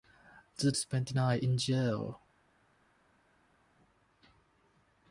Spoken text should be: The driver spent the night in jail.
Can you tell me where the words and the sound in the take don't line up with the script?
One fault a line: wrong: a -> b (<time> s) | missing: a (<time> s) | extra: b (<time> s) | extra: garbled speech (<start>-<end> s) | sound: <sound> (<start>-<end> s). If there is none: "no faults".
missing: driver (0.7 s)